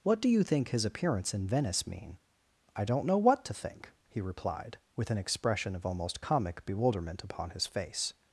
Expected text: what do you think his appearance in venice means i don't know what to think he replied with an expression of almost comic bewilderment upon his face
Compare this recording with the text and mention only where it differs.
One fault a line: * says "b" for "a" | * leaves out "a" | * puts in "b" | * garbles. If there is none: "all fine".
* says "mean" for "means"